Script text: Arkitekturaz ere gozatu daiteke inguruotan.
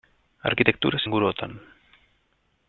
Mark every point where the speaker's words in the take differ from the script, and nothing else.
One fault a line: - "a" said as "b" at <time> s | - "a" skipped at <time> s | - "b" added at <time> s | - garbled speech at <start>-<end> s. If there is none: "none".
- "ere gozatu daiteke" skipped at 1.0 s